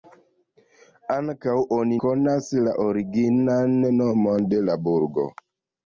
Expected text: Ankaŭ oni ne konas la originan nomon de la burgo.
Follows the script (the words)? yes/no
no